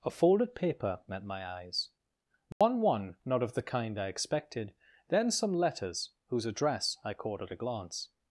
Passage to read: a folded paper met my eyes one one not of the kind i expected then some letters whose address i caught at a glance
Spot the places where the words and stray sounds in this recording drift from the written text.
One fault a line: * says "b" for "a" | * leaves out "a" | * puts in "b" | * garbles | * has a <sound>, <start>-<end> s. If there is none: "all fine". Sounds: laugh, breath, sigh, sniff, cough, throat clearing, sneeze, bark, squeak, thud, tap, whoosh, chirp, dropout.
* has a dropout, 2.5-2.6 s